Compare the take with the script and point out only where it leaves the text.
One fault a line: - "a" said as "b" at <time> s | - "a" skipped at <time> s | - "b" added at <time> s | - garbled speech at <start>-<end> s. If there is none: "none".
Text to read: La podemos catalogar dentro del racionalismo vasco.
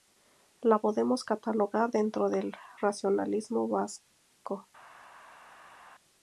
none